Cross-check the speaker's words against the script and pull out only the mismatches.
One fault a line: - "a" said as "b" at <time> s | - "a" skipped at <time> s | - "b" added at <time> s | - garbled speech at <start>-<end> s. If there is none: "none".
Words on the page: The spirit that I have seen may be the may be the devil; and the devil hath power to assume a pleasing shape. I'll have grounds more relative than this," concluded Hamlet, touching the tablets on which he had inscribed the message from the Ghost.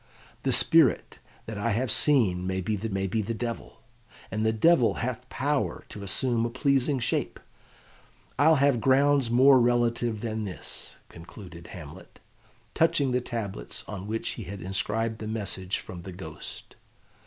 none